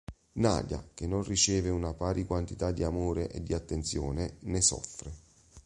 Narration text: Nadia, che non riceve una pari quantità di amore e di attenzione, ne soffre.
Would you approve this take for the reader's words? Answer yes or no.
yes